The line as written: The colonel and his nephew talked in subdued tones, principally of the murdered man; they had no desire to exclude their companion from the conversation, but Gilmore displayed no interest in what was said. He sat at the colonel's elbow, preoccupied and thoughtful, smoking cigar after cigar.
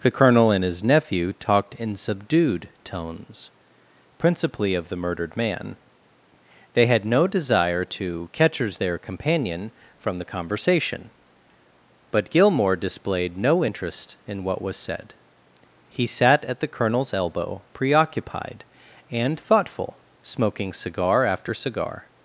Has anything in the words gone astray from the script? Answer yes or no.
yes